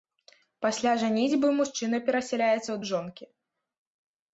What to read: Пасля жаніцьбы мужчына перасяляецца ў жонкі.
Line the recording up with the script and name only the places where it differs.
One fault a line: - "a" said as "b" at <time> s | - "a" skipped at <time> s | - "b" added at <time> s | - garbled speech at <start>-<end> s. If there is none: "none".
none